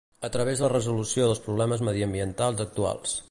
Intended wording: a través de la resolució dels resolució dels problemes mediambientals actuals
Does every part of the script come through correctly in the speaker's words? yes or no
no